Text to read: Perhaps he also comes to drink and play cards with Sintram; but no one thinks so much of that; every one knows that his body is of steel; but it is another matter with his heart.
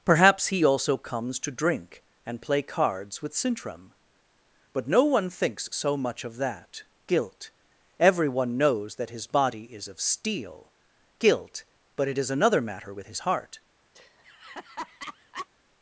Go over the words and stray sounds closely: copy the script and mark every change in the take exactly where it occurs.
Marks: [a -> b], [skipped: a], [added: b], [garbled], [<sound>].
Perhaps he also comes to drink and play cards with Sintram; but no one thinks so much of that; [every one -> guilt everyone] knows that his body is of steel; [added: guilt] but it is another matter with his heart. [laugh]